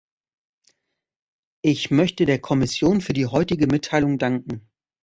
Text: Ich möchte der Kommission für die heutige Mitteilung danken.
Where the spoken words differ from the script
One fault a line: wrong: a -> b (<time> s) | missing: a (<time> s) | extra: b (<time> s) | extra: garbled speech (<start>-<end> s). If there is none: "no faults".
no faults